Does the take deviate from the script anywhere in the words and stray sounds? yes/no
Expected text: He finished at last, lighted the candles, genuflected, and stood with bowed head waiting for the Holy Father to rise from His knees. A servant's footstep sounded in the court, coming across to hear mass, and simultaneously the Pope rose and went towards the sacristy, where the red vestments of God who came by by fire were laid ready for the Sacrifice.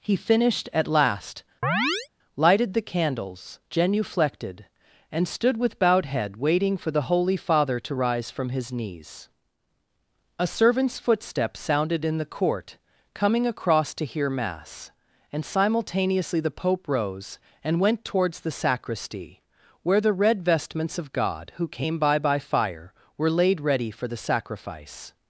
yes